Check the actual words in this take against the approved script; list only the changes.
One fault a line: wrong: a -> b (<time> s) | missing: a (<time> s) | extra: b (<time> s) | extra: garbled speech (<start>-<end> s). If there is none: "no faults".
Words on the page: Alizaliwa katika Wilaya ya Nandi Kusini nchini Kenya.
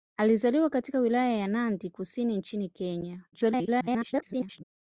extra: garbled speech (3.3-4.6 s)